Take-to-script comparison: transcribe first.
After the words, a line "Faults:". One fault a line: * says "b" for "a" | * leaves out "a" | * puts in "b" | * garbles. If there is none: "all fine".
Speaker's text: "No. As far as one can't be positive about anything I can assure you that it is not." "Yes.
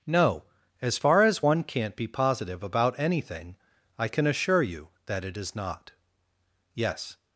"No. As far as one can't be positive about anything I can assure you that it is not." "Yes.
Faults:
all fine